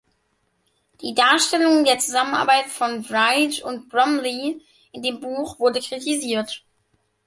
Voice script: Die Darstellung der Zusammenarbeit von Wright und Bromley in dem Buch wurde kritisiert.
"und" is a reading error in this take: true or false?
false